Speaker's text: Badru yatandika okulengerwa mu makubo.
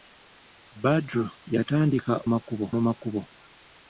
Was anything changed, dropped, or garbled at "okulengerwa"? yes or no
yes